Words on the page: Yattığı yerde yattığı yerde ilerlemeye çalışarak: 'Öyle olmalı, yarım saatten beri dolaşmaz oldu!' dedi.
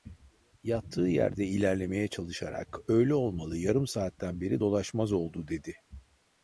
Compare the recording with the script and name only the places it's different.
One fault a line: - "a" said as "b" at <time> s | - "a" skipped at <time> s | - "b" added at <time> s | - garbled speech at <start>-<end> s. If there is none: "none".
- "yattığı yerde" skipped at 1.5 s